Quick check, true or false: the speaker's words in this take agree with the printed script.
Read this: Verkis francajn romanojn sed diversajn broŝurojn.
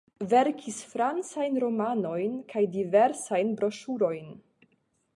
false